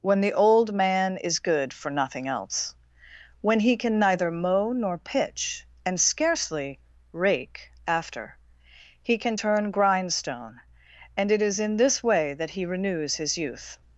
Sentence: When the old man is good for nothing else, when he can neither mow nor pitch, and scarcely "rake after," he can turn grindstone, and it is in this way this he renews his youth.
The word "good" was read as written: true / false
true